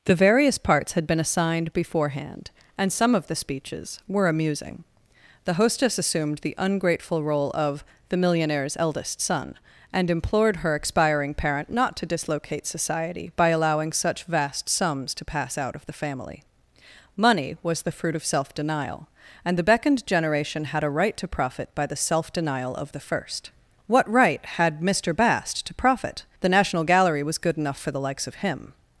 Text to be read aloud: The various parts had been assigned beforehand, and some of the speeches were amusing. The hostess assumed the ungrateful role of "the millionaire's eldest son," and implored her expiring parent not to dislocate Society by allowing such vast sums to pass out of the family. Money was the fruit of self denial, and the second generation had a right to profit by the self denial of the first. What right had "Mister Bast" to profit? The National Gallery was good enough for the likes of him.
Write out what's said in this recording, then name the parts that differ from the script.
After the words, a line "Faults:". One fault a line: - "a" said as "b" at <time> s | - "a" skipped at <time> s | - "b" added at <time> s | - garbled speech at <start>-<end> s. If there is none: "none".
The various parts had been assigned beforehand, and some of the speeches were amusing. The hostess assumed the ungrateful role of "the millionaire's eldest son," and implored her expiring parent not to dislocate Society by allowing such vast sums to pass out of the family. Money was the fruit of self denial, and the beckoned generation had a right to profit by the self denial of the first. What right had "Mister Bast" to profit? The National Gallery was good enough for the likes of him.
Faults:
- "second" said as "beckoned" at 19.6 s